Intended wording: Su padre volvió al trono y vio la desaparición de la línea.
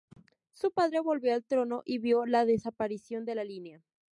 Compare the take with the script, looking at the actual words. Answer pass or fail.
pass